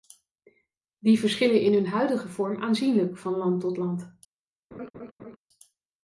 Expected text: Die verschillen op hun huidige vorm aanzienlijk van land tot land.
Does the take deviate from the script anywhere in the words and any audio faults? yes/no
yes